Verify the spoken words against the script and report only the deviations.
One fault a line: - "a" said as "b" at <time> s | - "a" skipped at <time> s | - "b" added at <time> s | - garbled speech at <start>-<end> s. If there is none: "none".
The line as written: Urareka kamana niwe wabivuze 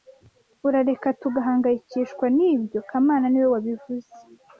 - "tugahangayikishwa nibyo" added at 1.2 s